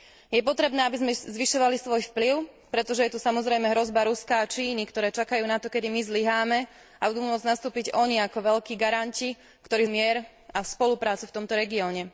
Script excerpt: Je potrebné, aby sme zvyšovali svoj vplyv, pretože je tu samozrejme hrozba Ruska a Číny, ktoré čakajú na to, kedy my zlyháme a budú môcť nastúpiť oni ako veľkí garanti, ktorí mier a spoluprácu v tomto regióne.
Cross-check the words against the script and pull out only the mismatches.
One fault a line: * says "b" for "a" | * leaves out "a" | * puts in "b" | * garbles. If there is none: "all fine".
all fine